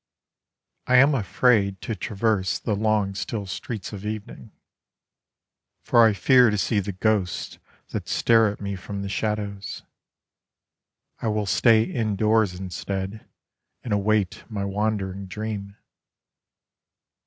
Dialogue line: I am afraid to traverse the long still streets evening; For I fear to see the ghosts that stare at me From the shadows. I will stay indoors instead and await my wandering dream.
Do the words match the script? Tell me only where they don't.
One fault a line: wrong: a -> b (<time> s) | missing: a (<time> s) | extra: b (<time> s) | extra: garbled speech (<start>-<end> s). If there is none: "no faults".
extra: of (3.9 s)